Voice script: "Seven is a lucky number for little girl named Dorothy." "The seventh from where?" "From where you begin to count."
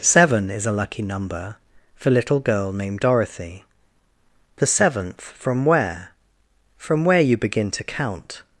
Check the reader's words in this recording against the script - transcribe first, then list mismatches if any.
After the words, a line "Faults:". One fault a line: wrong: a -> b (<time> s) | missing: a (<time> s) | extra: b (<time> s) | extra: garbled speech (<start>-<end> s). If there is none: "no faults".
"Seven is a lucky number for little girl named Dorothy." "The seventh from where?" "From where you begin to count."
Faults:
no faults